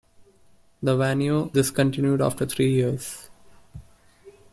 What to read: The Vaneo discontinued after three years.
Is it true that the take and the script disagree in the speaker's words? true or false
false